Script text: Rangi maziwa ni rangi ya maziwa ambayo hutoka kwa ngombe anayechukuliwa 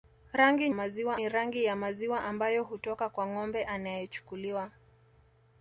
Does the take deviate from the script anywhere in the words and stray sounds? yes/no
no